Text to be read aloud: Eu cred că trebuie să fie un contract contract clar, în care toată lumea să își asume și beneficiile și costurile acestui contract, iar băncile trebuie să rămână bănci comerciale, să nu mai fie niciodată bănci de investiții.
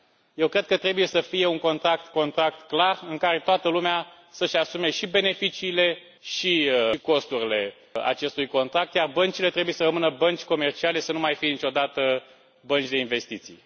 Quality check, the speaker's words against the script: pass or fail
pass